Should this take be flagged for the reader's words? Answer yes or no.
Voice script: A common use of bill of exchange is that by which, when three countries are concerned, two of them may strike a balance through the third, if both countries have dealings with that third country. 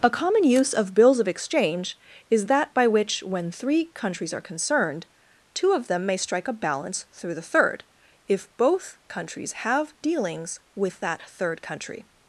yes